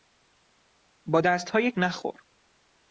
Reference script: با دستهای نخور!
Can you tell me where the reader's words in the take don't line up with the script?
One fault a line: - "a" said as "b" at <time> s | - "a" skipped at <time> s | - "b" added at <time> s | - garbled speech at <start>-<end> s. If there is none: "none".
none